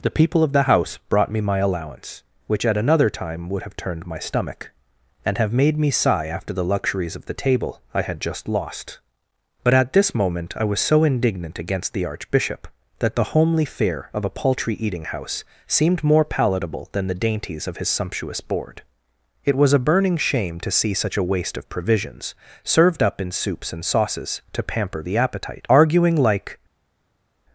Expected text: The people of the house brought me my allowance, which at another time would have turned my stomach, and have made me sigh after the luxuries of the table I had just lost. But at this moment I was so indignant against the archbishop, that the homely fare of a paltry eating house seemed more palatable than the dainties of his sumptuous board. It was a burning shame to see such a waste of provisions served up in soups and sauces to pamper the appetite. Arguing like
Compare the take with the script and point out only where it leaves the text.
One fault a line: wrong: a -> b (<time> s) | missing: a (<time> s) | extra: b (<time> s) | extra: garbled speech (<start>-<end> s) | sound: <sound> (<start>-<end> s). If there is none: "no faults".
no faults